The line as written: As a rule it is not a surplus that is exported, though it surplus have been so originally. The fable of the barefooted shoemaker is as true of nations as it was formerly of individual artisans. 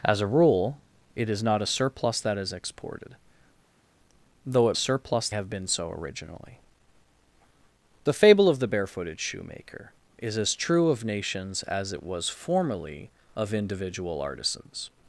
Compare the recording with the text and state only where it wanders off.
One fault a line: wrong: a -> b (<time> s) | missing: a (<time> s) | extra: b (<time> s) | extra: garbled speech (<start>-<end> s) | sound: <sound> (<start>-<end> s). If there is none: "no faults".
no faults